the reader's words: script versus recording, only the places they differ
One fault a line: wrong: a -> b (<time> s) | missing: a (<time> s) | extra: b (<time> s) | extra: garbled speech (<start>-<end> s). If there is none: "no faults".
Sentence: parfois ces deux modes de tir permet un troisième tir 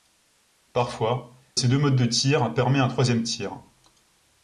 no faults